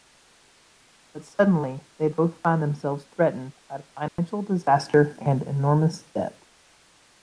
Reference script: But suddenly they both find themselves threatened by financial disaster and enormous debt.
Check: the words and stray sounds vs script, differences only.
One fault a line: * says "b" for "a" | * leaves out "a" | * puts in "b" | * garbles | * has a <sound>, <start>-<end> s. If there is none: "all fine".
* has a dropout, 4.1-4.2 s